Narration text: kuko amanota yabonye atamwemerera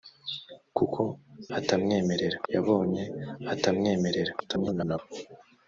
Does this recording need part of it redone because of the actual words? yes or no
yes